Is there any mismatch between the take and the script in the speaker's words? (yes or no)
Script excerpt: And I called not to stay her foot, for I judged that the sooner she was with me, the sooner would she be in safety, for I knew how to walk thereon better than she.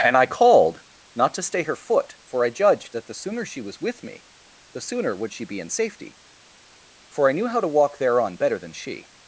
no